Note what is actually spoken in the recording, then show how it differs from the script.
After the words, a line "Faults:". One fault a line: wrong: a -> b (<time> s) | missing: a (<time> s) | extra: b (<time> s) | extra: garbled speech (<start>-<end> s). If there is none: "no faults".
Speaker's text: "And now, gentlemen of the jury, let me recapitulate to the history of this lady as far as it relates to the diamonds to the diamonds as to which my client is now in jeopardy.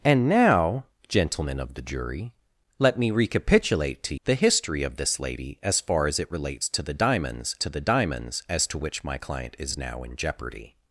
"And now, gentlemen of the jury, let me recapitulate to the history of this lady as far as it relates to the diamonds to the diamonds as to which my client is now in jeopardy.
Faults:
no faults